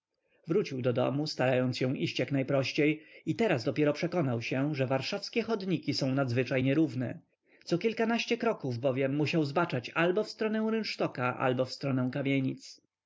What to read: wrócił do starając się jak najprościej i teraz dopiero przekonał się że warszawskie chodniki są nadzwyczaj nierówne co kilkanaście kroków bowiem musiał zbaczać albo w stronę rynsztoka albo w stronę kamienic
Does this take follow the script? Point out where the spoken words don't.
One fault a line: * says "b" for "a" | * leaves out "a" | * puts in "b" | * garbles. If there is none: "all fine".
* puts in "domu"
* puts in "iść"